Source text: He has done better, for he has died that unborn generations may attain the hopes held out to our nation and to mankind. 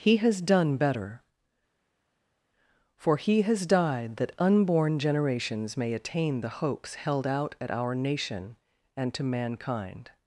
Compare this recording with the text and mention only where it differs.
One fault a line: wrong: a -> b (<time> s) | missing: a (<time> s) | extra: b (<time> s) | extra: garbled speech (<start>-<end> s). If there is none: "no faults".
wrong: to -> at (7.6 s)